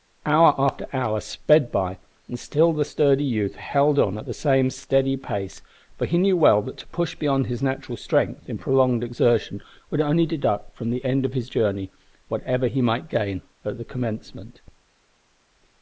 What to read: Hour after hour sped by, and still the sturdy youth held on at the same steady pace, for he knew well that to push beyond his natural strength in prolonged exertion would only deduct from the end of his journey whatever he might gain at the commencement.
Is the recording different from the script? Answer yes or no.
no